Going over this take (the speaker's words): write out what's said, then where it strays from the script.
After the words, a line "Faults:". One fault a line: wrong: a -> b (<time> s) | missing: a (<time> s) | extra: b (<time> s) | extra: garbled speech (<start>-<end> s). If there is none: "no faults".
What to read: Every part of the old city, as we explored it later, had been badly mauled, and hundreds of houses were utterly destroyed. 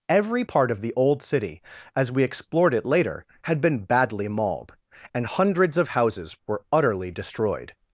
Every part of the old city, as we explored it later, had been badly mauled, and hundreds of houses were utterly destroyed.
Faults:
no faults